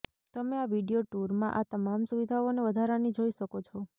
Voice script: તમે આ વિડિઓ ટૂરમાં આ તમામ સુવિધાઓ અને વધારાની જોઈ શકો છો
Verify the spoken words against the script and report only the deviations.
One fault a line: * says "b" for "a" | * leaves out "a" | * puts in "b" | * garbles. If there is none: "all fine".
all fine